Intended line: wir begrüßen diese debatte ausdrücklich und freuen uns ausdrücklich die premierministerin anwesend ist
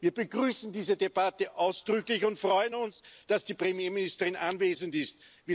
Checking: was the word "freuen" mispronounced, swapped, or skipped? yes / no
no